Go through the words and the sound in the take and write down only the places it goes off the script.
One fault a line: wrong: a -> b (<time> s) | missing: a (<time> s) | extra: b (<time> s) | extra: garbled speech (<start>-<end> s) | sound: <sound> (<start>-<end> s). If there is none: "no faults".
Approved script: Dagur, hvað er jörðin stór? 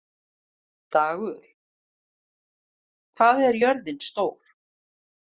no faults